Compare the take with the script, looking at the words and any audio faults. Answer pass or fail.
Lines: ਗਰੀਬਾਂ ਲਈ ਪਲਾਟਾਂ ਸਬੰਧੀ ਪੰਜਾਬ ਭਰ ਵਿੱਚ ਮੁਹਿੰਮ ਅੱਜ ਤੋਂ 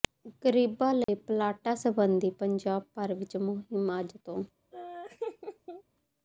fail